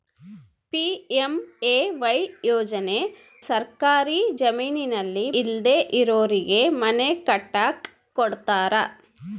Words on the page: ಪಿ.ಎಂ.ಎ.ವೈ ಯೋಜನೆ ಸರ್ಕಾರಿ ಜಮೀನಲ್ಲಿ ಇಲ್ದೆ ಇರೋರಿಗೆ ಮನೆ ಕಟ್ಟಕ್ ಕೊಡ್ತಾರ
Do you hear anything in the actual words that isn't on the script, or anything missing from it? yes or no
no